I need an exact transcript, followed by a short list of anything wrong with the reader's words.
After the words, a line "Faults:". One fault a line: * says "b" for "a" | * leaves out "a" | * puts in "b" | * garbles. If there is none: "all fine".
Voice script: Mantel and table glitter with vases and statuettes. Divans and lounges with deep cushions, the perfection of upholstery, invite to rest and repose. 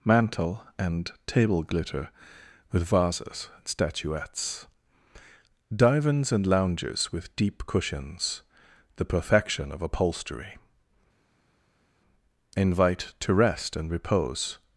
Mantel and table glitter with vases and statuettes. Divans and lounges with deep cushions, the perfection of upholstery, invite to rest and repose.
Faults:
all fine